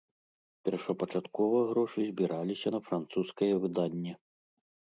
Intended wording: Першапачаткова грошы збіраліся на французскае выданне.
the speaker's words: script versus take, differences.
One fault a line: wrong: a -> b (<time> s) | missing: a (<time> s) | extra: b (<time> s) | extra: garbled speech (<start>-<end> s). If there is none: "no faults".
no faults